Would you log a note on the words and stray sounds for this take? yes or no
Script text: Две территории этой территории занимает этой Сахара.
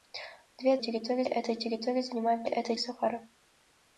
no